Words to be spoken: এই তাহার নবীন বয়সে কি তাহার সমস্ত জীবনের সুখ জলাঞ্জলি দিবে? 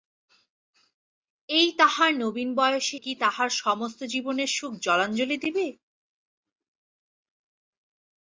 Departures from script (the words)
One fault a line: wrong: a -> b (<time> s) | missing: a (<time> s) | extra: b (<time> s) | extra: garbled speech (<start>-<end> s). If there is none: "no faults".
no faults